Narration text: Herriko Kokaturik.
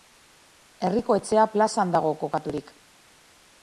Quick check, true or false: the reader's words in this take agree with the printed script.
false